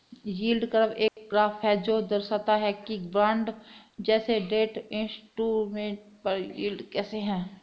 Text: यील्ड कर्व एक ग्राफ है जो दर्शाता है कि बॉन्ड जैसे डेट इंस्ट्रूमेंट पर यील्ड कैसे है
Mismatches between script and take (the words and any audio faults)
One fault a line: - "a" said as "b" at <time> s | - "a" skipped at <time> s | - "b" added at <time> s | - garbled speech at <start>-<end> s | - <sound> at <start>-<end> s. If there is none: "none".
- dropout at 1.1-1.2 s